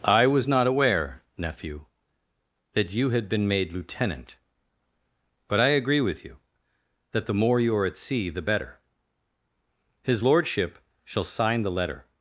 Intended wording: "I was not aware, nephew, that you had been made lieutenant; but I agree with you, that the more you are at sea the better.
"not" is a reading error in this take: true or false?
false